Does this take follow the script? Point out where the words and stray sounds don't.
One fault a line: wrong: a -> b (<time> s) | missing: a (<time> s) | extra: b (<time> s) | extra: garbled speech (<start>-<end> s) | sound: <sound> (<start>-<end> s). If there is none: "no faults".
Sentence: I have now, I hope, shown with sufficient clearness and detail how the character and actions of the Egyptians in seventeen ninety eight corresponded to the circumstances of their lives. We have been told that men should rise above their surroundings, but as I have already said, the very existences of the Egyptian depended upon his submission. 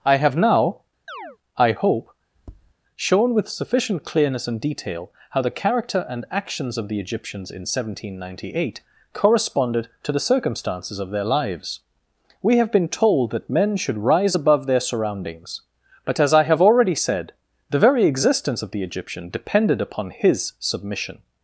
sound: chirp (1.1-1.4 s)
sound: tap (2.4-2.7 s)
wrong: existences -> existence (18.1 s)